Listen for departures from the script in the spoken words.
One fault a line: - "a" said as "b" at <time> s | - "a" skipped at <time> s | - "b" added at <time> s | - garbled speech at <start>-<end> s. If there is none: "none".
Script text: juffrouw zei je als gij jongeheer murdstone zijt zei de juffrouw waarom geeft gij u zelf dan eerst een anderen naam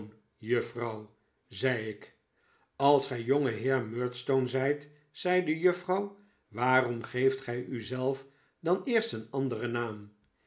- "je" said as "ik" at 1.9 s